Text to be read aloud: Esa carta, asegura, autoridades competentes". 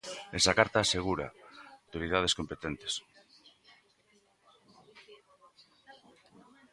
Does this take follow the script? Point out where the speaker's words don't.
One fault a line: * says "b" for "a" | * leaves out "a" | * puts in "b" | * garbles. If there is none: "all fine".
all fine